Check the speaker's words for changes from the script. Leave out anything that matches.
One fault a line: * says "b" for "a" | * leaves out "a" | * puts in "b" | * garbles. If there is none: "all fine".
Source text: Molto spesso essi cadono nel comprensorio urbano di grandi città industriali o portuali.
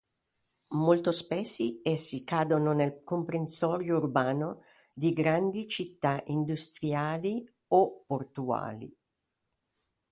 all fine